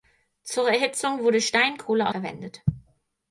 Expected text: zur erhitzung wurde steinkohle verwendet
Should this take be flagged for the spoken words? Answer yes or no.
no